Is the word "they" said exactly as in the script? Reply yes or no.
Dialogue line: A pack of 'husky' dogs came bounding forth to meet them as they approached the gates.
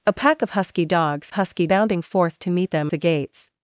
no